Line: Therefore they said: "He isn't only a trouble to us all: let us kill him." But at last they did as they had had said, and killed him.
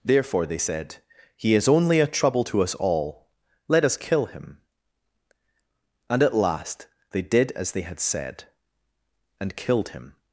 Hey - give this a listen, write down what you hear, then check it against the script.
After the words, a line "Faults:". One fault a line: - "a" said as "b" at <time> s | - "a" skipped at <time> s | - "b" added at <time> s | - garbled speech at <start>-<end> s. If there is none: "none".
Therefore they said: "He is only a trouble to us all: let us kill him." And at last they did as they had said, and killed him.
Faults:
- "isn't" said as "is" at 1.5 s
- "But" said as "And" at 6.1 s
- "had" skipped at 8.0 s